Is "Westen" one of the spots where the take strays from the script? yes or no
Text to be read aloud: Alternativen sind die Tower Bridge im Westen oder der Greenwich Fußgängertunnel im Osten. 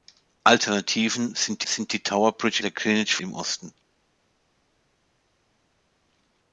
yes